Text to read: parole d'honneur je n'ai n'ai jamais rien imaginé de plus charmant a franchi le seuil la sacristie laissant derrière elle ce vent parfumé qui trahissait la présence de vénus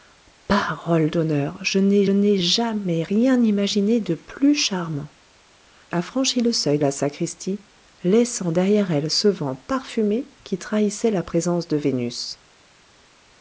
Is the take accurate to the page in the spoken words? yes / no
yes